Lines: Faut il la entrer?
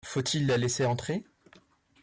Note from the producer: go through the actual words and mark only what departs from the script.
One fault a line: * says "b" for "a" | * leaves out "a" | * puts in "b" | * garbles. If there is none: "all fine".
* puts in "laisser"